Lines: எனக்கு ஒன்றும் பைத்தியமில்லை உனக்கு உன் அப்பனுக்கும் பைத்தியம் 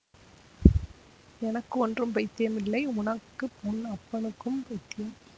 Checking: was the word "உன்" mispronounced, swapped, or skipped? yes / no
no